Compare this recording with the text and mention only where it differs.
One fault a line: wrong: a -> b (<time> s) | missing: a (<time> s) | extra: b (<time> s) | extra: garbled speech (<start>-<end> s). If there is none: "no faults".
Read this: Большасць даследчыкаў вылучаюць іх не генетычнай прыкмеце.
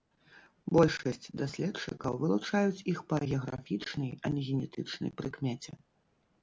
extra: па геаграфічнай а (3.1 s)